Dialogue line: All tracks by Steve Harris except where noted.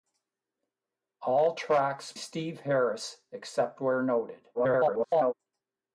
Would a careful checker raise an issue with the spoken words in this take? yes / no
yes